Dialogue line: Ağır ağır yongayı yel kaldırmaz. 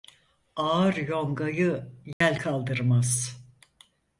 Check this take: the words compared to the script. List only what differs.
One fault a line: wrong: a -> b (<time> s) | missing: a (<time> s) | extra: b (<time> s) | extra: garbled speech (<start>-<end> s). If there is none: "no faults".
missing: ağır (0.9 s)